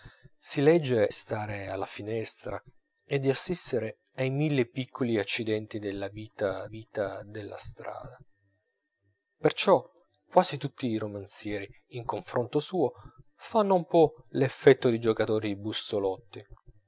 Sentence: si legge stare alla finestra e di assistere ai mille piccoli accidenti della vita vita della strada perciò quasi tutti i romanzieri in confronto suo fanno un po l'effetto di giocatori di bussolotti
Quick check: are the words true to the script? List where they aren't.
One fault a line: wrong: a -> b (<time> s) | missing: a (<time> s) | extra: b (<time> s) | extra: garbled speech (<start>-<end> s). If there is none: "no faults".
no faults